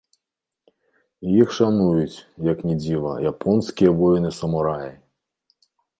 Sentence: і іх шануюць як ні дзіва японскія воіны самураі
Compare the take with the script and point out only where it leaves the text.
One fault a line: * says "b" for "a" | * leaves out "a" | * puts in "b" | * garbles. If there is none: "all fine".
all fine